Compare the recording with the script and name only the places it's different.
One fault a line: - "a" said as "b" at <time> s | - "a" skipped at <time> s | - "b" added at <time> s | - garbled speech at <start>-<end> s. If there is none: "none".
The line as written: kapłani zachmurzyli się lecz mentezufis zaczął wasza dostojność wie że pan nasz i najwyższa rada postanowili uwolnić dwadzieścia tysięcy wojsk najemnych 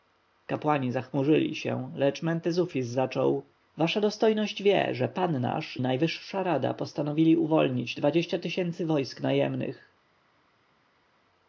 - "i" skipped at 5.8 s